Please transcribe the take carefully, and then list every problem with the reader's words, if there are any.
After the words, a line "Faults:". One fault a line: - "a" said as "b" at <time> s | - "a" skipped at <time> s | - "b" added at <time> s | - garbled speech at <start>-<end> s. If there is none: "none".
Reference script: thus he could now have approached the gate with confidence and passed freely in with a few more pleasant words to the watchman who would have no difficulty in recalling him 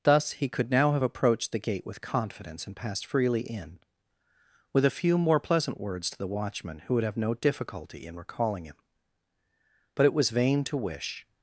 thus he could now have approached the gate with confidence and passed freely in with a few more pleasant words to the watchman who would have no difficulty in recalling him but it was vain to wish
Faults:
- "but it was vain to wish" added at 9.9 s